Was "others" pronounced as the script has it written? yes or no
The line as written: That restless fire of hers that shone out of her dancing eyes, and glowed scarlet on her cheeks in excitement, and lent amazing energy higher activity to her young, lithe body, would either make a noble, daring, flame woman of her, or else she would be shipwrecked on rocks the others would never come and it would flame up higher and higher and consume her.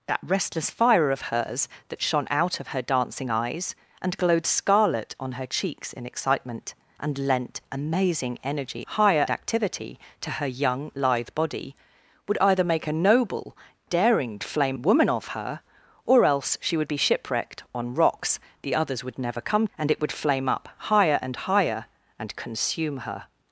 yes